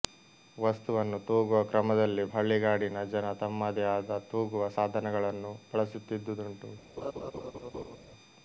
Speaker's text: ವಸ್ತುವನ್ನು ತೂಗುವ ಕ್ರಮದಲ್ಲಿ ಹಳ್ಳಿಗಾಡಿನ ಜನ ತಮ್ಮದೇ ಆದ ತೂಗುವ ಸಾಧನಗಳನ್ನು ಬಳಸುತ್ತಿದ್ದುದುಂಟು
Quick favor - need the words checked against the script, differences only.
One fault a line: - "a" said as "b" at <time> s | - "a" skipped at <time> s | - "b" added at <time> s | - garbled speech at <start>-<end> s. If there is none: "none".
none